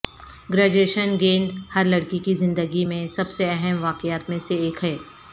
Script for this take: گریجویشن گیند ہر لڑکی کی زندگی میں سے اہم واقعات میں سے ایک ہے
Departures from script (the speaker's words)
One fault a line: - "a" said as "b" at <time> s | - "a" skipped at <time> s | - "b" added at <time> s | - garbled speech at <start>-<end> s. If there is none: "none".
- "سب" added at 3.1 s